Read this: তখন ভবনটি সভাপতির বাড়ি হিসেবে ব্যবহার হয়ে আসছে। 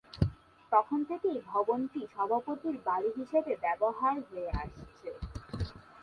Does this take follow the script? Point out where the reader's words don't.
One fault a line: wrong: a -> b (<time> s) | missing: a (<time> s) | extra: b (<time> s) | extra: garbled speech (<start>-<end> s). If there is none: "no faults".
extra: থেকেই (1.1 s)